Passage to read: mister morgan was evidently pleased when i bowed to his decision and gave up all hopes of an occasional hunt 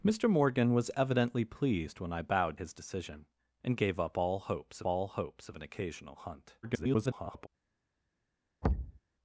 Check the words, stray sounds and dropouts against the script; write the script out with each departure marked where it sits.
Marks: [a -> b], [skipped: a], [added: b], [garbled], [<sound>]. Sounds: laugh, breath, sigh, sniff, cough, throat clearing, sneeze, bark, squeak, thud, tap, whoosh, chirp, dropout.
mister morgan was evidently pleased when i bowed [skipped: to] his decision and gave up all hopes [added: all hopes] of an occasional hunt [garbled] [thud]